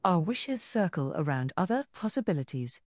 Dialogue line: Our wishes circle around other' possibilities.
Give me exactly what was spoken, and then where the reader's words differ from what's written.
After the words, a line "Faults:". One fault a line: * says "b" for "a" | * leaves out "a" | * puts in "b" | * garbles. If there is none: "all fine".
Our wishes circle around other' possibilities.
Faults:
all fine